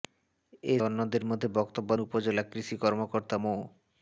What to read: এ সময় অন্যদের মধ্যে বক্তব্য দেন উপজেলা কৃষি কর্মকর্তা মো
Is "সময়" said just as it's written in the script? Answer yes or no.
no